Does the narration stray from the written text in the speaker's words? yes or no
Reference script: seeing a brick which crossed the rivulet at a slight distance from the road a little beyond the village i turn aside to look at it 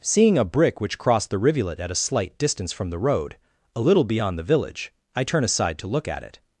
no